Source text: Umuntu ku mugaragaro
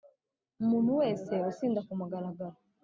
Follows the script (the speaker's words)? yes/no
no